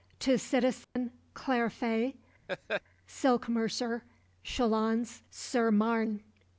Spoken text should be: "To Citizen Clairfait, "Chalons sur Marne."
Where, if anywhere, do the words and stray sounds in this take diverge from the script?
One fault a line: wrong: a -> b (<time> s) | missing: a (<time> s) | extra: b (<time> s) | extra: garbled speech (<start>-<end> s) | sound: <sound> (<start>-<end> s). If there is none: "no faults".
sound: dropout (0.8-1.0 s)
sound: laugh (2.5-2.8 s)
extra: Silk mercer (3.0 s)